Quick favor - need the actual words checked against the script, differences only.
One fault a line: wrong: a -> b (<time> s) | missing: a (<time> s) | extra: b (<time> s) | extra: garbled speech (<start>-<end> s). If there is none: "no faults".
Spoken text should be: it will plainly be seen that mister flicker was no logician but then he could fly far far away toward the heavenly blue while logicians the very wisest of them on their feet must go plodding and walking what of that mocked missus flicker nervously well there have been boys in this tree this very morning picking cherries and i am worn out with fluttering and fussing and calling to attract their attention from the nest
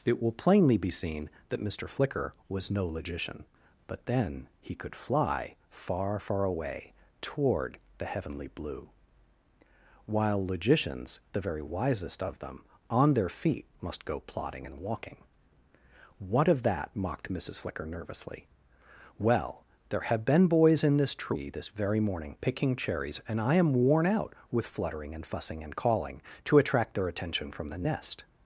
no faults